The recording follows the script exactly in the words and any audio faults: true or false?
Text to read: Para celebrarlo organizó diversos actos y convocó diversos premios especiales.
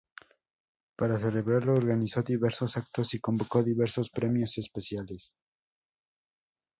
true